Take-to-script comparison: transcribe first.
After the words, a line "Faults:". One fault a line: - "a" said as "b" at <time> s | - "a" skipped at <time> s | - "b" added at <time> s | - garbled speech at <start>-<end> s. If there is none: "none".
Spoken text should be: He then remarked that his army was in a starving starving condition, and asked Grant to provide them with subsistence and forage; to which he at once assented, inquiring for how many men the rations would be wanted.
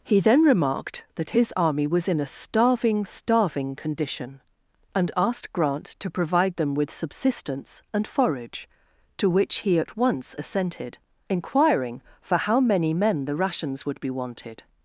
He then remarked that his army was in a starving starving condition, and asked Grant to provide them with subsistence and forage; to which he at once assented, inquiring for how many men the rations would be wanted.
Faults:
none